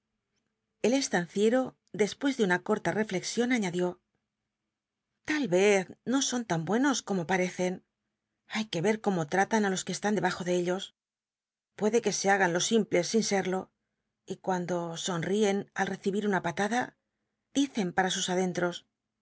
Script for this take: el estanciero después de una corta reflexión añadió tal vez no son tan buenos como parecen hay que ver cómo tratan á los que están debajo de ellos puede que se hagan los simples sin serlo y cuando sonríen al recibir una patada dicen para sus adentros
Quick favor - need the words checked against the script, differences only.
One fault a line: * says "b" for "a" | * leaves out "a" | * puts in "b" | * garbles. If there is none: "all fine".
all fine